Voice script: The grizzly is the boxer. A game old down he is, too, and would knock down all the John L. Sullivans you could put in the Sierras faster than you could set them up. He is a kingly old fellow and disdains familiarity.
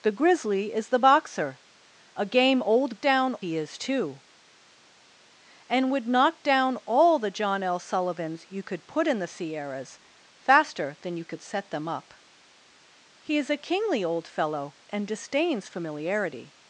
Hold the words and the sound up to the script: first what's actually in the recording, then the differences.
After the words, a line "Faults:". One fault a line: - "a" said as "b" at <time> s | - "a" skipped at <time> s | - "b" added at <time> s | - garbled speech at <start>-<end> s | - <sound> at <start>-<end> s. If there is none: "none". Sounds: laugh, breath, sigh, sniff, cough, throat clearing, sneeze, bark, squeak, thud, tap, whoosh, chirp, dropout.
The grizzly is the boxer. A game old down he is, too, and would knock down all the John L. Sullivans you could put in the Sierras faster than you could set them up. He is a kingly old fellow and disdains familiarity.
Faults:
none